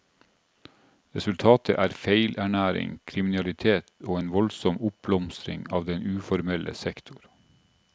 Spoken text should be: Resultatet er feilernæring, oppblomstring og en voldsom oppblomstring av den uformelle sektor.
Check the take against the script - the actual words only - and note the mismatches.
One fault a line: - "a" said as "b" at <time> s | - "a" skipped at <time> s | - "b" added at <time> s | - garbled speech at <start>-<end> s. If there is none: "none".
- "oppblomstring" said as "kriminalitet" at 3.0 s